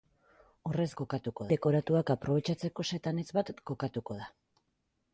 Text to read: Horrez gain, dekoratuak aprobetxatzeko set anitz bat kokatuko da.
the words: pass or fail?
fail